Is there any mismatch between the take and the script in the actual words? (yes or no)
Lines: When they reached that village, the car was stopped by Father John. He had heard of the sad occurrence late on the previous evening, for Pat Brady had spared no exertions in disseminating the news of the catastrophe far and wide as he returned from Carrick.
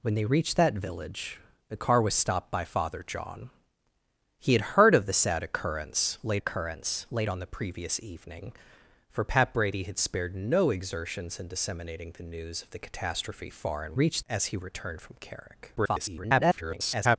yes